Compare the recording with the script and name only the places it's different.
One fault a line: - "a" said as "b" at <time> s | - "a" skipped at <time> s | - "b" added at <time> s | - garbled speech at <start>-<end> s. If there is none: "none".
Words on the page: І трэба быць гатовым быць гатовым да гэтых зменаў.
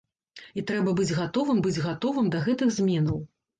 none